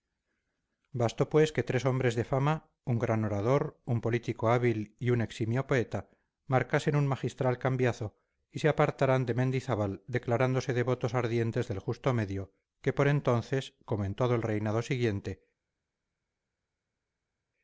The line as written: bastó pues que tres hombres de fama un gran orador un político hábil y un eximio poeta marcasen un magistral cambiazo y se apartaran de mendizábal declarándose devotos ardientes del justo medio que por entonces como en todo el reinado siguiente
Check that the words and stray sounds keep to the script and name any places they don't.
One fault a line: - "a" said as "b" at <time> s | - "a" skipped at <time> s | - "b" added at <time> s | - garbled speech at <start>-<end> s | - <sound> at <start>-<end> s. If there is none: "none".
none